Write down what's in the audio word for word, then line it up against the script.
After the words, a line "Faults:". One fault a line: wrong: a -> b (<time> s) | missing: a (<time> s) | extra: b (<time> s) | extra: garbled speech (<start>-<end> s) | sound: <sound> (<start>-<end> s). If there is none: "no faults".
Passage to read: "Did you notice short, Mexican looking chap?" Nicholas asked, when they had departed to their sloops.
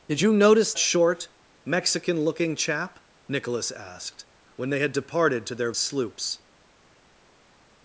"Did you notice short, Mexican looking chap?" Nicholas asked, when they had departed to their sloops.
Faults:
no faults